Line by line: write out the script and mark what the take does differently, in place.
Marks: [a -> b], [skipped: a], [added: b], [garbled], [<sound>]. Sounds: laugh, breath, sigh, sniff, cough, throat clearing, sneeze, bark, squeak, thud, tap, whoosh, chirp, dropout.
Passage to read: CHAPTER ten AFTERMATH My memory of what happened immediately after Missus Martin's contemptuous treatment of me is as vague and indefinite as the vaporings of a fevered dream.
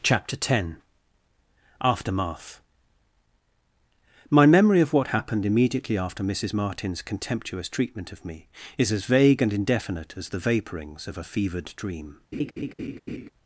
CHAPTER ten AFTERMATH My memory of what happened immediately after Missus Martin's contemptuous treatment of me is as vague and indefinite as the vaporings of a fevered dream. [laugh]